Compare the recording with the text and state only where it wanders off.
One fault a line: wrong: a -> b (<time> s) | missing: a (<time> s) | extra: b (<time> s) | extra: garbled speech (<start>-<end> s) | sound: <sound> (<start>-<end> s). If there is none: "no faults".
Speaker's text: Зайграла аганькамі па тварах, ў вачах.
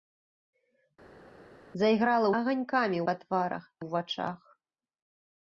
no faults